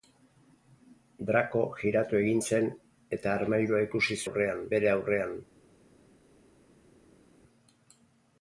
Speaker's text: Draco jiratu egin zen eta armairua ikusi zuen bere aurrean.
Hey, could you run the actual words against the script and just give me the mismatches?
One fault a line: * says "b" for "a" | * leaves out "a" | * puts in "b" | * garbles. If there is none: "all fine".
* says "aurrean" for "zuen"